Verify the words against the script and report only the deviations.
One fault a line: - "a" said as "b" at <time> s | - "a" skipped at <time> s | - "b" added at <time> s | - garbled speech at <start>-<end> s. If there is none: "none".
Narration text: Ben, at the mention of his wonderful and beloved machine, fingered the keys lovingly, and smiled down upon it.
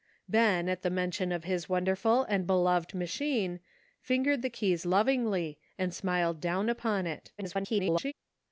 - garbled speech at 7.4-8.1 s